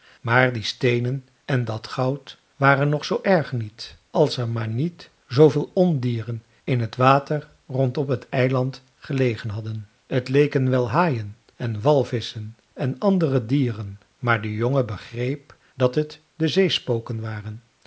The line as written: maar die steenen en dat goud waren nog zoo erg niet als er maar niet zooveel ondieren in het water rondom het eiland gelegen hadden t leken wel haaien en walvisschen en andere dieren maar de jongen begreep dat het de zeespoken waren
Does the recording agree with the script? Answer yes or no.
yes